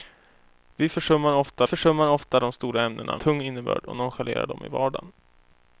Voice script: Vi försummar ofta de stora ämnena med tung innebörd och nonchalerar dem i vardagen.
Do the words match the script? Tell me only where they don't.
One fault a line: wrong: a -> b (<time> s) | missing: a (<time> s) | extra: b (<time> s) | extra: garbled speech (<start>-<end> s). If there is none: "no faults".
extra: försummar ofta (1.7 s)
missing: med (3.2 s)